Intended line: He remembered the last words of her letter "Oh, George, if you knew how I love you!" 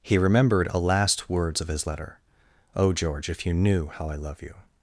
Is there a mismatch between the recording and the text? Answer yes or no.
yes